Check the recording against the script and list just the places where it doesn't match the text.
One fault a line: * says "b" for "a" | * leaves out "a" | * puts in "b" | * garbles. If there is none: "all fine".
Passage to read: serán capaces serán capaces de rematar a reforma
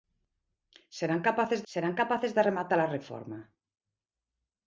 all fine